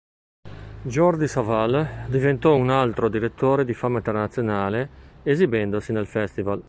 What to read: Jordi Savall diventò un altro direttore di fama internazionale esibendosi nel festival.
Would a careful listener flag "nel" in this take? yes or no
no